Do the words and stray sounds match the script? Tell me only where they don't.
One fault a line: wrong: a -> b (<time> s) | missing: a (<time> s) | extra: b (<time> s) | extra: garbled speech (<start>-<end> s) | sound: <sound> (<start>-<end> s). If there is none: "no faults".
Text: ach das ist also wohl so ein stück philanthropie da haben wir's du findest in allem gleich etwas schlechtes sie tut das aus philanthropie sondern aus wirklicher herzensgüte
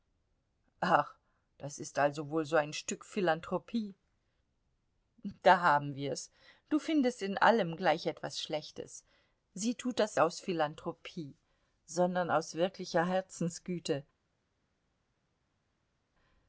no faults